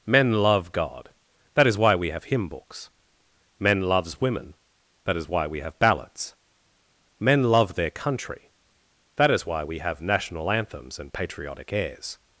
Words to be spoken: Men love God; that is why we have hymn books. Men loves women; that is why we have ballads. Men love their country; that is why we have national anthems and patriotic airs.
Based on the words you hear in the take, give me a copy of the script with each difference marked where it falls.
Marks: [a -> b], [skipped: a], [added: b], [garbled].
Men love God; that is why we have hymn books. Men loves women; that is why we have ballads. Men love their country; that is why we have national anthems and patriotic airs.